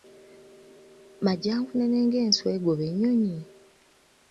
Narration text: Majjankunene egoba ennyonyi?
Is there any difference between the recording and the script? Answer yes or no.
yes